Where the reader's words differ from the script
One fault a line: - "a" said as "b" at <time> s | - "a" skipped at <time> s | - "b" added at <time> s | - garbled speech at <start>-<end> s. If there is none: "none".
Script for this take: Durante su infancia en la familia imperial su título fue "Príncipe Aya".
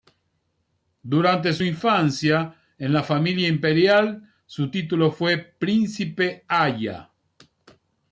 none